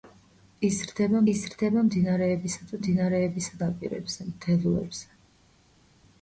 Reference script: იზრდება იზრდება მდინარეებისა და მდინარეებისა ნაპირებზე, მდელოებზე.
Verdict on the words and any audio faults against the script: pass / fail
pass